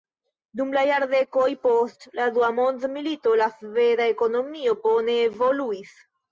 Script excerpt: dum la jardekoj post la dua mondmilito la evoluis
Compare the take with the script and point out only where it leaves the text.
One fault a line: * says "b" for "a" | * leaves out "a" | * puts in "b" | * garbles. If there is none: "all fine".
* puts in "sveda ekonomio bone"